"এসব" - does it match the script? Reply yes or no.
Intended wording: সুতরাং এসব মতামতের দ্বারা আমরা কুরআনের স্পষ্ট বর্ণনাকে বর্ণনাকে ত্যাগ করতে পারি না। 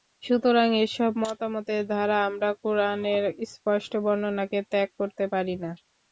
yes